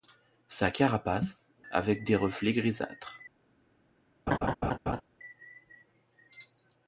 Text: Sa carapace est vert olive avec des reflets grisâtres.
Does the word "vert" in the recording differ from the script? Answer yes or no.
yes